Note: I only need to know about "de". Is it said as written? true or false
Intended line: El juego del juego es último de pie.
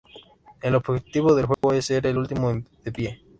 true